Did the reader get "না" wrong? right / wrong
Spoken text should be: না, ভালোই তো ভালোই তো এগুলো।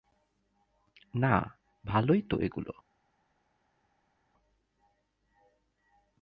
right